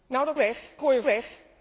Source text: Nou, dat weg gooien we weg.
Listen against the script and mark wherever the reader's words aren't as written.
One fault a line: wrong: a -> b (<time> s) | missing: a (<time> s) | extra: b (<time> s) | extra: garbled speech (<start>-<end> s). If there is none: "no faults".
no faults